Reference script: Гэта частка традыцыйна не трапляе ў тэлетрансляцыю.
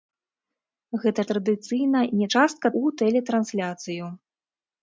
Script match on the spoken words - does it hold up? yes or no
no